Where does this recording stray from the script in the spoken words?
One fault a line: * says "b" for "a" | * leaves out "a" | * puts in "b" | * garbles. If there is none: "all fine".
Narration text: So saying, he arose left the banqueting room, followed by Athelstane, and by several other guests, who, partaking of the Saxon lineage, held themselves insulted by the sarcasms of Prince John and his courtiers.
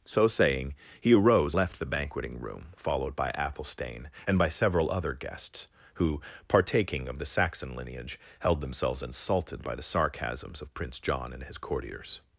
all fine